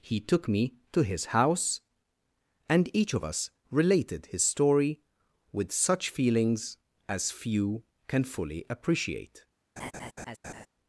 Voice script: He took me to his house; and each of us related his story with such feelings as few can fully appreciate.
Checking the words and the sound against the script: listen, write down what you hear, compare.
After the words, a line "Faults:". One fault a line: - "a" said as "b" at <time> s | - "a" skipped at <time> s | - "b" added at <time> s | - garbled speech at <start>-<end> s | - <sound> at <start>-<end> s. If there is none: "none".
He took me to his house; and each of us related his story with such feelings as few can fully appreciate.
Faults:
- laugh at 9.8-10.7 s